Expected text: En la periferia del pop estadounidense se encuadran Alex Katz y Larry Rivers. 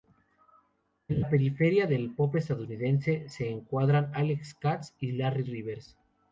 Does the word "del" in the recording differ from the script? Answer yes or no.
no